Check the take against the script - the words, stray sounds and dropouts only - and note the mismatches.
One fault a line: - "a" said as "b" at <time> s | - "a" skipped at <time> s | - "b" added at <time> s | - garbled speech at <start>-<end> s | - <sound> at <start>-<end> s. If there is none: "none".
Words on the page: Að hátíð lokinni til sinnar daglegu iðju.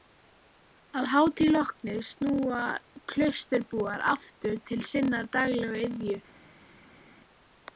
- "snúa klausturbúar aftur" added at 2.1 s